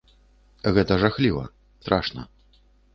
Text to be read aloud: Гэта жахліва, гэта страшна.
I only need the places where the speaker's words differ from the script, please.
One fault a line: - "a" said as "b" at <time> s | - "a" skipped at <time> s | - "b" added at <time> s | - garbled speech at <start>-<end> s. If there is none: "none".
- "гэта" skipped at 1.4 s